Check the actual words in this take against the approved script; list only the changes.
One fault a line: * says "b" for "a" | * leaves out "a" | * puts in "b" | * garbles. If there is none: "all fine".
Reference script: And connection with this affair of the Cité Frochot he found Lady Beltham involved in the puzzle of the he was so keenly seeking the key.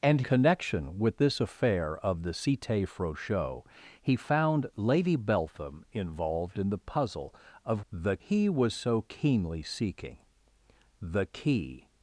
all fine